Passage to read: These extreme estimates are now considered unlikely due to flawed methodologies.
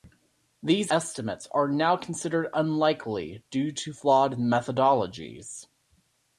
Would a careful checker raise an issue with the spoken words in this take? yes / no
yes